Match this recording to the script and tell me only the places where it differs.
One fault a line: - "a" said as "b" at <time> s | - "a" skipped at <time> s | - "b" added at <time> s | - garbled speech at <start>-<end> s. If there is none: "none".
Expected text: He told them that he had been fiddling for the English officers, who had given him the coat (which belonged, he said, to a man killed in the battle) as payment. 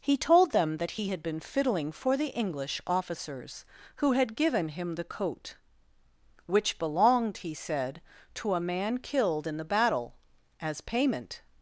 none